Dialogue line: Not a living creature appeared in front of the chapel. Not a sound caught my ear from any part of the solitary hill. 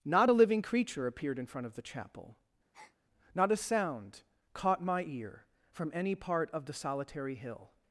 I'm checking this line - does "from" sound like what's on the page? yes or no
yes